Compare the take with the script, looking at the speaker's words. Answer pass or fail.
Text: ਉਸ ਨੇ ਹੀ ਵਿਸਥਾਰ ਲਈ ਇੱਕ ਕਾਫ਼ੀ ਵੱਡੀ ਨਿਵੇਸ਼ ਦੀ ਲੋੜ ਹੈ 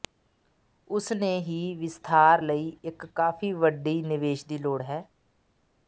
pass